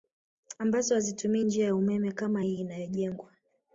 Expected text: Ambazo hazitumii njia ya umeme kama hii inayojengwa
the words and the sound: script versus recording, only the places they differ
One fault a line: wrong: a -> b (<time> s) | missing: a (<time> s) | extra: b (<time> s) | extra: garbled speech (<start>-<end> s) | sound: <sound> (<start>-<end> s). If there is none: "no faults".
no faults